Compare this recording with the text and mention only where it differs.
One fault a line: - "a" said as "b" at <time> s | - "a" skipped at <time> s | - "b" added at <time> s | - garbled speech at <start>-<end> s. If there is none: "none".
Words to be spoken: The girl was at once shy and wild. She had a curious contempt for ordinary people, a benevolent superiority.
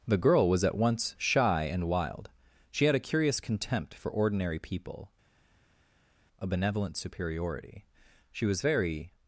- "She was very" added at 8.3 s